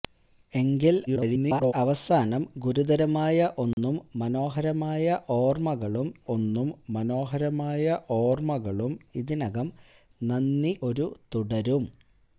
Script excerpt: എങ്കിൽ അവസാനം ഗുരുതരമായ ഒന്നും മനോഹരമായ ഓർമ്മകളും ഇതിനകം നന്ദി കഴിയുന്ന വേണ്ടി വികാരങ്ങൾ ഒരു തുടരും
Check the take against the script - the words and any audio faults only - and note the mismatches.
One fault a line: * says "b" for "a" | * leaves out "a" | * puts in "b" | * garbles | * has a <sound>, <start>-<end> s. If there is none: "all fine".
* garbles
* has a dropout, 3.7-3.8 s
* says "ഒന്നും മനോഹരമായ ഓർമ്മകളും ഇതിനകം നന്ദി" for "ഇതിനകം നന്ദി കഴിയുന്ന വേണ്ടി വികാരങ്ങൾ"